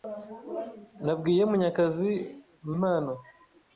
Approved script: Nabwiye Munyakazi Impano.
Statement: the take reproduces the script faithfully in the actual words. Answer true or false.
true